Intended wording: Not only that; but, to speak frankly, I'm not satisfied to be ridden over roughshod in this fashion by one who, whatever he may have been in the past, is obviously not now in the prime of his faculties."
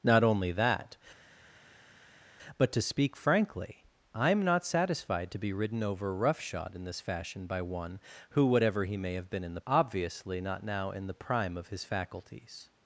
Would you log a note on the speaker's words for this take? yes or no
yes